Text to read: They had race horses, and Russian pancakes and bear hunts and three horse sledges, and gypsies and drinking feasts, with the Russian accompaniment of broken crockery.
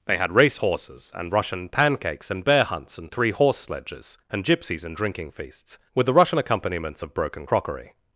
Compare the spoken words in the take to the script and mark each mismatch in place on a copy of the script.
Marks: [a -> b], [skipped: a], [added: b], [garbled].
They had race horses, and Russian pancakes and bear hunts and three horse sledges, and gypsies and drinking feasts, with the Russian [accompaniment -> accompaniments] of broken crockery.